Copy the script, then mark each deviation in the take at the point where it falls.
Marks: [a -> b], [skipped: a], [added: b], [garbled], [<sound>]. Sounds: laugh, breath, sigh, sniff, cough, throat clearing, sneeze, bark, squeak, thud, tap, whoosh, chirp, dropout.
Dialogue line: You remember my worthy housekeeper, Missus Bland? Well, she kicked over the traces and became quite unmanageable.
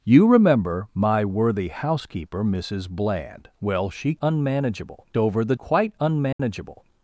You remember my worthy housekeeper, Missus Bland? Well, she [kicked -> unmanageable] over the [skipped: traces and became] quite unmanageable. [dropout]